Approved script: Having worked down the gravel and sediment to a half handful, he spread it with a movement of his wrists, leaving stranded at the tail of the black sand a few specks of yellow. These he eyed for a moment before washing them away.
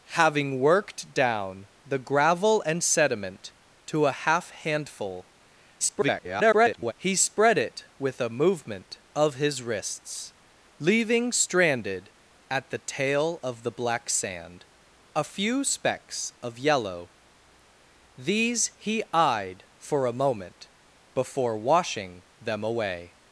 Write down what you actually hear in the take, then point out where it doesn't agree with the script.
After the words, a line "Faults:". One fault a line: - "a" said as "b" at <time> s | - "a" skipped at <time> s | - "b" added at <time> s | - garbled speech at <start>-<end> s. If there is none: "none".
Having worked down the gravel and sediment to a half handful, [garbled] he spread it with a movement of his wrists, leaving stranded at the tail of the black sand a few specks of yellow. These he eyed for a moment before washing them away.
Faults:
- garbled speech at 5.8-6.9 s